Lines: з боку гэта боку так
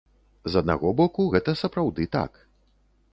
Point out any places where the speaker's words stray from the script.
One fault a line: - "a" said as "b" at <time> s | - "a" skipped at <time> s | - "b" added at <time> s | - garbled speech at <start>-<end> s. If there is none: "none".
- "аднаго" added at 0.6 s
- "боку" said as "сапраўды" at 1.6 s